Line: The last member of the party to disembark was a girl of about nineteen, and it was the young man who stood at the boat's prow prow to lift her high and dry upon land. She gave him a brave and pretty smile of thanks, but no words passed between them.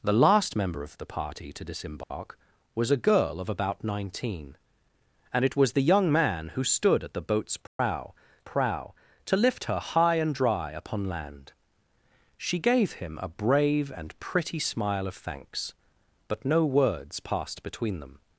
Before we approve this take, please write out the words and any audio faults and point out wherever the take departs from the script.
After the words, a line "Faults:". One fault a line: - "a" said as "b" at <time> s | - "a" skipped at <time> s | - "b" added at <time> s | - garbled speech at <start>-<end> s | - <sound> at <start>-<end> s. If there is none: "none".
The last member of the party to disembark was a girl of about nineteen, and it was the young man who stood at the boat's prow prow to lift her high and dry upon land. She gave him a brave and pretty smile of thanks, but no words passed between them.
Faults:
- dropout at 2.0-2.1 s
- dropout at 7.7-7.8 s